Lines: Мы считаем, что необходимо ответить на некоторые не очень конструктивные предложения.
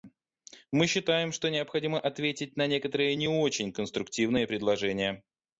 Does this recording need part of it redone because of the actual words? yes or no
no